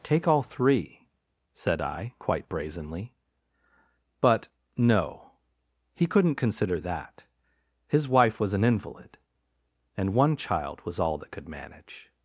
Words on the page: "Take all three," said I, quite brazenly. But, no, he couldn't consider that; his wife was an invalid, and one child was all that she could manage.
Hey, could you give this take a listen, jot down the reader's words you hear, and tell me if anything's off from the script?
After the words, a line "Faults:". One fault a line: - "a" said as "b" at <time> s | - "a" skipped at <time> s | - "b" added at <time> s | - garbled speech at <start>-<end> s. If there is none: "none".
"Take all three," said I, quite brazenly. But, no, he couldn't consider that; his wife was an invalid, and one child was all that could manage.
Faults:
- "she" skipped at 11.3 s